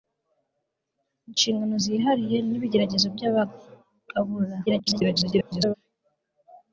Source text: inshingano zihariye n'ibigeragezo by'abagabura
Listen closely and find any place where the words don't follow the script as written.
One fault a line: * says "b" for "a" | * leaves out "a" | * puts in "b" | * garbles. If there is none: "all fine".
* garbles